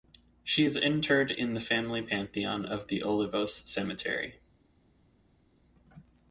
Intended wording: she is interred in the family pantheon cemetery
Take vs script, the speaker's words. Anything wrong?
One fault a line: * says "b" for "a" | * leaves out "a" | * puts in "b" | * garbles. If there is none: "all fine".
* puts in "of the olivos"